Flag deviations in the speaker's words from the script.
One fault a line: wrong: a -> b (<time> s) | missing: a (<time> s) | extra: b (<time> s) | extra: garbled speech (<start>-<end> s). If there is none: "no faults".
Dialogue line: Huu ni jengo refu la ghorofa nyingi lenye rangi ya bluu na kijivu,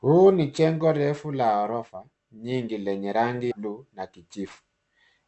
missing: ya (3.5 s)